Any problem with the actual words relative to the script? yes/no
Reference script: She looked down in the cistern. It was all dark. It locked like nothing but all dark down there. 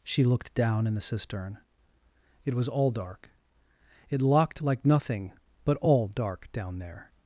no